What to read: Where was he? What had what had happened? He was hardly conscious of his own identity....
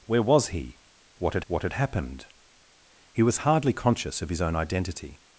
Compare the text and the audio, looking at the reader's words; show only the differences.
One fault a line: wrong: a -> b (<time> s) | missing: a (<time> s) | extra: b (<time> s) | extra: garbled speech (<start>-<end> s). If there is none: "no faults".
no faults